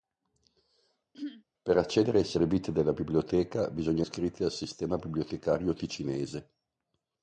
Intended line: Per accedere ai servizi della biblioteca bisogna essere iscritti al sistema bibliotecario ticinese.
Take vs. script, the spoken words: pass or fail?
fail